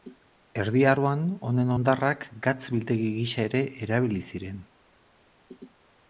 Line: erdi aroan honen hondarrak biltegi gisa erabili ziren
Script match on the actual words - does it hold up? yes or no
no